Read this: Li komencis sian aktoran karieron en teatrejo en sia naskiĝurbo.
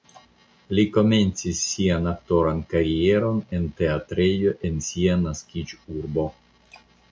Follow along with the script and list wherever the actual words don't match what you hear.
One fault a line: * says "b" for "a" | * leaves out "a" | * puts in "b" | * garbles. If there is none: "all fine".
all fine